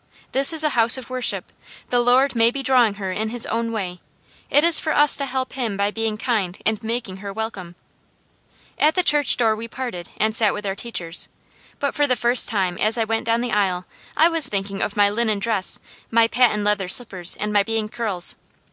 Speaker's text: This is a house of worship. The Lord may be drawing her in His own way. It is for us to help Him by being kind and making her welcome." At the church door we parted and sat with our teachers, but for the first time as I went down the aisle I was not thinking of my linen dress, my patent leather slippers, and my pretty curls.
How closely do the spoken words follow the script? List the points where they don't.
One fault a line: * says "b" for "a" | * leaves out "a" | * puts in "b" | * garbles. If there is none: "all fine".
* leaves out "not"
* says "being" for "pretty"